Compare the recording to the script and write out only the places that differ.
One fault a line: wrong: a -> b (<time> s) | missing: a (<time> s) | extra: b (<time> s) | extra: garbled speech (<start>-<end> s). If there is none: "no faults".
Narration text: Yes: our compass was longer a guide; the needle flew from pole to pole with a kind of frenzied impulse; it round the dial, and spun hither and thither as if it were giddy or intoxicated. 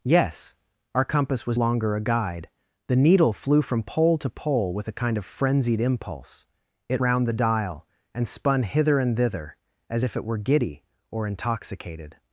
no faults